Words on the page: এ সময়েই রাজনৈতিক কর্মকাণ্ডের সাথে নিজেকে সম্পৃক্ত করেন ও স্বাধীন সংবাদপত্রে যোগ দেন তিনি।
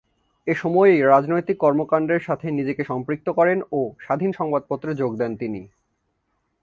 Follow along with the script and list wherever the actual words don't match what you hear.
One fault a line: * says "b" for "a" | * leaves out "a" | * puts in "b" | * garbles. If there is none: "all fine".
all fine